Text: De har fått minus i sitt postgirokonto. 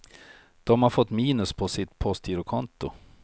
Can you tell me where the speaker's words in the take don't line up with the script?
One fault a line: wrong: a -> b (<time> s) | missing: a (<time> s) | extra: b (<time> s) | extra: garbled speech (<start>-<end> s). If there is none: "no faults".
wrong: i -> på (1.5 s)